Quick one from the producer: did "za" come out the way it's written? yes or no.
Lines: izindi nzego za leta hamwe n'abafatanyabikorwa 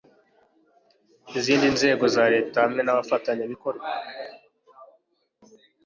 yes